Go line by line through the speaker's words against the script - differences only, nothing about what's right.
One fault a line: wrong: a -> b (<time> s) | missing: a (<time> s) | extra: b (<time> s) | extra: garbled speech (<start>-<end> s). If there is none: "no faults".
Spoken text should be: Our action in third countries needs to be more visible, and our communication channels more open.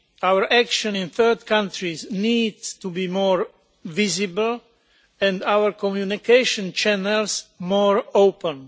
no faults